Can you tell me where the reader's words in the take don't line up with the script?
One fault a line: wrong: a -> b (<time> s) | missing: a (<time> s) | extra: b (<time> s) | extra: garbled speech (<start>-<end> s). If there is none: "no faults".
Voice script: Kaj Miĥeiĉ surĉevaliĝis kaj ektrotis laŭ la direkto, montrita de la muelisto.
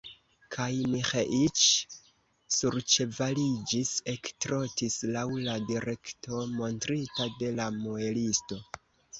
missing: kaj (3.9 s)